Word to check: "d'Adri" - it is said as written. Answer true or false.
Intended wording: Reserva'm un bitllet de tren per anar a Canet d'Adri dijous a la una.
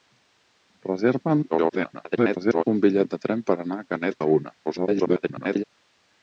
false